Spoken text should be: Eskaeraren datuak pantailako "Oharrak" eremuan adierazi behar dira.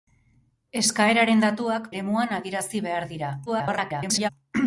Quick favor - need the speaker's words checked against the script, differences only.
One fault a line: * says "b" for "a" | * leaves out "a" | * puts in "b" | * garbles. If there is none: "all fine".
* leaves out "pantailako Oharrak"
* garbles